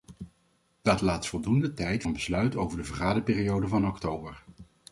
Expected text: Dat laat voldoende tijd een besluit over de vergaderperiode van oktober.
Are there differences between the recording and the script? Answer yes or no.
no